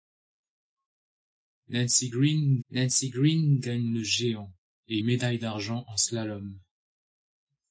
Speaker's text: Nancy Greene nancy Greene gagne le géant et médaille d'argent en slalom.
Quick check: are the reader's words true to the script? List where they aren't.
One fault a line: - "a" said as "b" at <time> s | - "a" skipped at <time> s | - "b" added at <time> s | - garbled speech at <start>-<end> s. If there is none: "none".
none